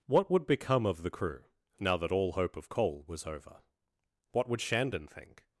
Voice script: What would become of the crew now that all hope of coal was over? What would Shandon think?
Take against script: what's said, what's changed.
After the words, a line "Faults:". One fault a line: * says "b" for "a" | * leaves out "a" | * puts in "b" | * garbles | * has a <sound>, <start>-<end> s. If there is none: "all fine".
What would become of the crew now that all hope of coal was over? What would Shandon think?
Faults:
all fine